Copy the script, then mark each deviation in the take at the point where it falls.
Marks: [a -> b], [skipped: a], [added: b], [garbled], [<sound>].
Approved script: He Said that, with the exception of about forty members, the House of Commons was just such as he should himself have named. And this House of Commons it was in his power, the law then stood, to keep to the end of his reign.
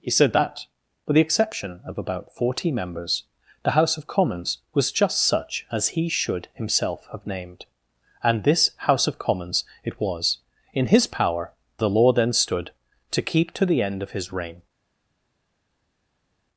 He Said that, with the exception of about forty members, the House of Commons was just such as he should himself have named. And this House of Commons it was in his power, the law then stood, to keep to the end of his reign.